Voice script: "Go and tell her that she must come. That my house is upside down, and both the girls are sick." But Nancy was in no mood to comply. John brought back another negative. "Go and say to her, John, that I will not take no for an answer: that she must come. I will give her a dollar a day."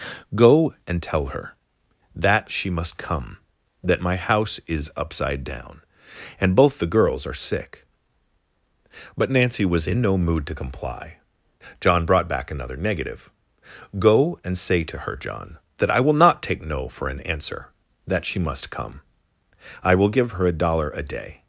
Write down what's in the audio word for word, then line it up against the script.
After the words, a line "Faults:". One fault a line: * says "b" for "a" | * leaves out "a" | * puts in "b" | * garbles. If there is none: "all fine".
"Go and tell her that she must come. That my house is upside down, and both the girls are sick." But Nancy was in no mood to comply. John brought back another negative. "Go and say to her, John, that I will not take no for an answer: that she must come. I will give her a dollar a day."
Faults:
all fine